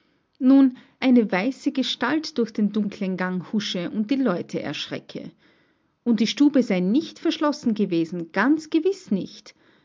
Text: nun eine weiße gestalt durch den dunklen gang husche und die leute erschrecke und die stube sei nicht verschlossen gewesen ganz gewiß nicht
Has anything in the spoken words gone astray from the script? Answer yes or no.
no